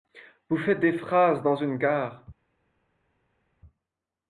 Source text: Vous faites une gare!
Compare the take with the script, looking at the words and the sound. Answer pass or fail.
fail